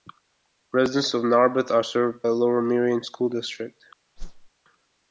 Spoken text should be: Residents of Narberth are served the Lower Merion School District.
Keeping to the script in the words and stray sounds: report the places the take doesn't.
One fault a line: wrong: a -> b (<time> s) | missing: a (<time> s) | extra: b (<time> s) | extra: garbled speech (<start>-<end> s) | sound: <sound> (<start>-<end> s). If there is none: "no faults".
sound: whoosh (4.2-4.5 s)